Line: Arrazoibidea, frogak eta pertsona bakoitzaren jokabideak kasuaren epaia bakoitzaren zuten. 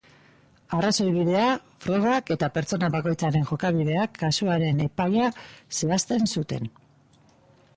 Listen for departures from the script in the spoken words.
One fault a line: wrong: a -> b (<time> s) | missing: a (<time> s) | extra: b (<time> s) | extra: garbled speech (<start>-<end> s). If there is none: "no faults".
wrong: bakoitzaren -> zehazten (5.8 s)